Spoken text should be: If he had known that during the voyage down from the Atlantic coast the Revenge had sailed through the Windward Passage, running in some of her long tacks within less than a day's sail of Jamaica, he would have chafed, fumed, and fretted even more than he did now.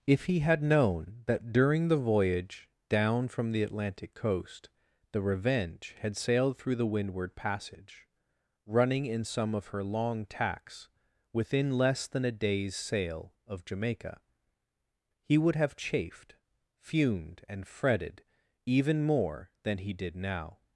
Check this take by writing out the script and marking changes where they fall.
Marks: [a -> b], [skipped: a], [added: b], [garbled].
If he had known that during the voyage down from the Atlantic coast the Revenge had sailed through the Windward Passage, running in some of her long tacks within less than a day's sail of Jamaica, he would have chafed, fumed, and fretted even more than he did now.